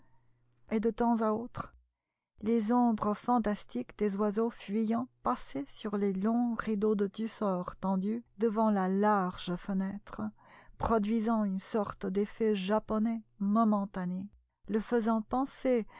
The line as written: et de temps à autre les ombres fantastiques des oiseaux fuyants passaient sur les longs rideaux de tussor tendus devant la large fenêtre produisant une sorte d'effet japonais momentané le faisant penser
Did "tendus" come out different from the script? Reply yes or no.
no